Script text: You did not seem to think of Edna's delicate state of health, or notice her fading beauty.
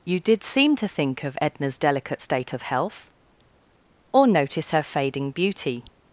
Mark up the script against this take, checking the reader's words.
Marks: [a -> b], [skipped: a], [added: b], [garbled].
You did [skipped: not] seem to think of Edna's delicate state of health, or notice her fading beauty.